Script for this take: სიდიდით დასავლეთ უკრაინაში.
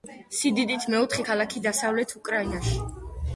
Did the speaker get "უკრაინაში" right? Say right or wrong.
right